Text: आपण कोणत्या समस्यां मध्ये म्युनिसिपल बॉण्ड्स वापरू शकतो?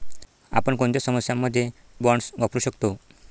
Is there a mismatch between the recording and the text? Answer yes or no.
yes